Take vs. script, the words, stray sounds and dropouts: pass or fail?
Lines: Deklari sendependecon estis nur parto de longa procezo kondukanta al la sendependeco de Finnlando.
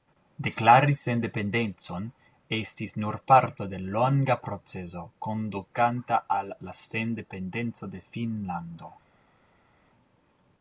pass